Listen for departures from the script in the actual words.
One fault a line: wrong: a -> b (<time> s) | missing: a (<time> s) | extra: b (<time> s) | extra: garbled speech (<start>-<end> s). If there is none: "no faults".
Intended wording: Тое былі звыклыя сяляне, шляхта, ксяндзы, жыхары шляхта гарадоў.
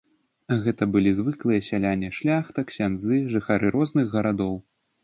wrong: Тое -> Гэта (0.6 s)
wrong: шляхта -> розных (3.8 s)